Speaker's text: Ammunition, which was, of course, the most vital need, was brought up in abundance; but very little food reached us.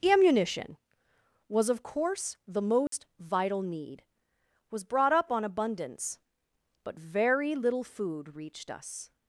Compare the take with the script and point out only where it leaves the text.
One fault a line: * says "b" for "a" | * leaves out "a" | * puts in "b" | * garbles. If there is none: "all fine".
* leaves out "which"
* says "on" for "in"